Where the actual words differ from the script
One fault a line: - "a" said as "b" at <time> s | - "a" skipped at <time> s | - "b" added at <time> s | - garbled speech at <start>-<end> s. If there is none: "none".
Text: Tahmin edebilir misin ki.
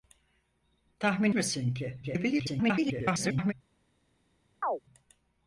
- "edebilir" skipped at 1.3 s
- garbled speech at 2.0-3.5 s